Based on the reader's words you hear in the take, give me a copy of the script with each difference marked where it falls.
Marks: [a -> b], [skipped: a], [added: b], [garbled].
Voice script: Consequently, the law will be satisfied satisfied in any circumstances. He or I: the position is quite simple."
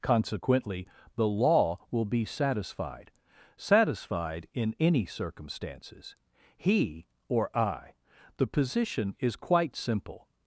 Consequently, the law will be satisfied satisfied in any circumstances. He or I: the position is quite simple."